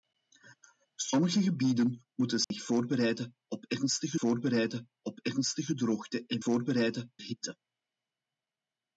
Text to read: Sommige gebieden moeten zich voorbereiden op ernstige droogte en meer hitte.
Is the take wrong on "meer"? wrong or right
wrong